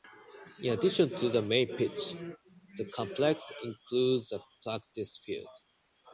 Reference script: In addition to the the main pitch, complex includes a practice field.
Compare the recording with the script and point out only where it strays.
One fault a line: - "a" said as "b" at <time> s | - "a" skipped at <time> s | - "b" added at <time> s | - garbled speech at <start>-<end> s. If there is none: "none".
- "the" skipped at 1.4 s
- "the" added at 2.8 s